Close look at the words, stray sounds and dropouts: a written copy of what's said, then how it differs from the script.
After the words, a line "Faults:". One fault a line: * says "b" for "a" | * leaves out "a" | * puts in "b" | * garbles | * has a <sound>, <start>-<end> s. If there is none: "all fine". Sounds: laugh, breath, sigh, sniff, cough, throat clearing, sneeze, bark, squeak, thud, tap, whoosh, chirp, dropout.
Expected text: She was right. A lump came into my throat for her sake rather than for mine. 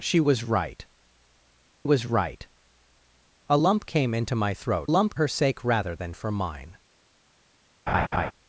She was right was right. A lump came into my throat lump her sake rather than for mine.
Faults:
* puts in "was right"
* says "lump" for "for"
* has a laugh, 7.9-8.3 s